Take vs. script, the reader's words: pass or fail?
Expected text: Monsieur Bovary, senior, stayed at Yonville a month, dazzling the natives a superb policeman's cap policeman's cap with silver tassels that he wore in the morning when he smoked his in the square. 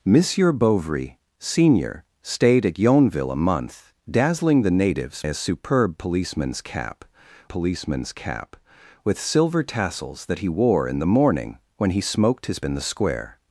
pass